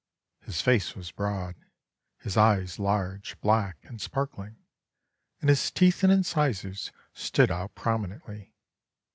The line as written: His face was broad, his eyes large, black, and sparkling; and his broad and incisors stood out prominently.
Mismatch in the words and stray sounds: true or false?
true